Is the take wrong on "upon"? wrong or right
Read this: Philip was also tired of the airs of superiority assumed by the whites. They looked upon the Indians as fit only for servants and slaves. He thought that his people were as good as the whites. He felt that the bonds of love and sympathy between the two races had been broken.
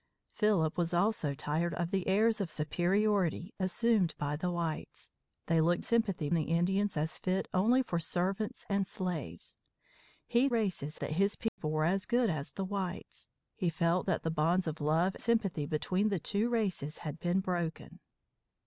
wrong